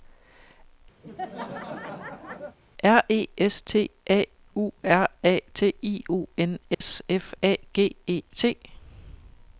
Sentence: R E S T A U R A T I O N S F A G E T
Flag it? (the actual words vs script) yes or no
no